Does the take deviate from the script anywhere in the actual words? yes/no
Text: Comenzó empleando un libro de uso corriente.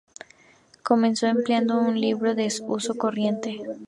no